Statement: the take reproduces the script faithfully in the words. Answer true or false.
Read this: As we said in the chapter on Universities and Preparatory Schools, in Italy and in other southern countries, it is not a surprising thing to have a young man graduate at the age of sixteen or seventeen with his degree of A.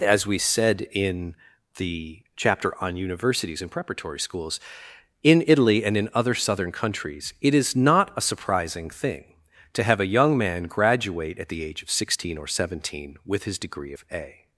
true